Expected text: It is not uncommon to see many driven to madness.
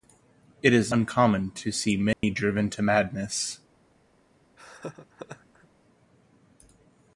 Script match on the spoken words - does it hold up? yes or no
no